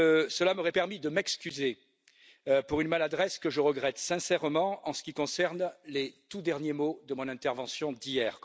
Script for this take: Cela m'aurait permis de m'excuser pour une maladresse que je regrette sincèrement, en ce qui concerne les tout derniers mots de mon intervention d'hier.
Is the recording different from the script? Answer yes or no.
no